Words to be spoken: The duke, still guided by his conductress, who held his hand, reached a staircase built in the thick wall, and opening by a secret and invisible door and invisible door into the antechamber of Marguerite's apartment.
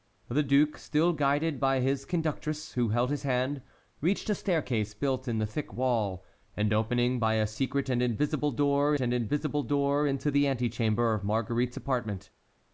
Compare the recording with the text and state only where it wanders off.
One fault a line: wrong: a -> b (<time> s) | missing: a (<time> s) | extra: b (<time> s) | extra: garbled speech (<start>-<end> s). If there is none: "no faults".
no faults